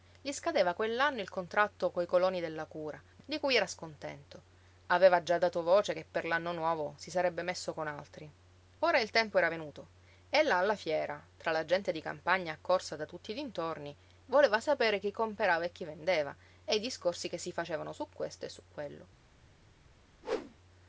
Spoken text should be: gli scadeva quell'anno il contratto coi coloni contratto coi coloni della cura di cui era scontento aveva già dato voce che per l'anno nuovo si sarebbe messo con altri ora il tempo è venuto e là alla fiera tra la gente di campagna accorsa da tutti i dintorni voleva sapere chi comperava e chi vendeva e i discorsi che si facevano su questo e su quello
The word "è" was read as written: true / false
false